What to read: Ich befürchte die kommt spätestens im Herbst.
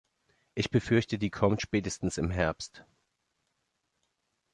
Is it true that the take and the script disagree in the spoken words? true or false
false